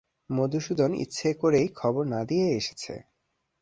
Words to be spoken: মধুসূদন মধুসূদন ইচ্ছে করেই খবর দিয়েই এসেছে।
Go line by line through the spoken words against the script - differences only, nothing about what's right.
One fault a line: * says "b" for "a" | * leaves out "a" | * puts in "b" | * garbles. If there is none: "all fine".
* leaves out "মধুসূদন"
* puts in "না"